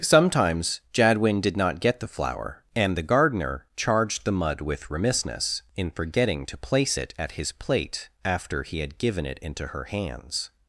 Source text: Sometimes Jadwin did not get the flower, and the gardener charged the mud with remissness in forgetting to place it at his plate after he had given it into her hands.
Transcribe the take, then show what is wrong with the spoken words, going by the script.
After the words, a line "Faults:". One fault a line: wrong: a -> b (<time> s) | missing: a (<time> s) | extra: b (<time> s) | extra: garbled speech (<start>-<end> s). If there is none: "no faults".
Sometimes Jadwin did not get the flower, and the gardener charged the mud with remissness in forgetting to place it at his plate after he had given it into her hands.
Faults:
no faults